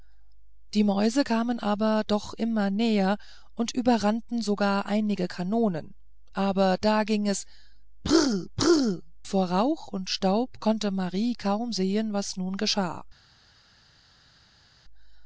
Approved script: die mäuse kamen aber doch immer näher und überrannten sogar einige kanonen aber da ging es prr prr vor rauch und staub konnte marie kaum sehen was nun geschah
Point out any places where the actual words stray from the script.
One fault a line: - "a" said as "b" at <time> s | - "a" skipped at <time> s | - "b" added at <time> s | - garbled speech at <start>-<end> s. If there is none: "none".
none